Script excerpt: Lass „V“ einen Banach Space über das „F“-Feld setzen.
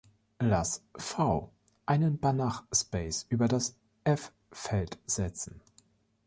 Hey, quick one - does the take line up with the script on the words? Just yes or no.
yes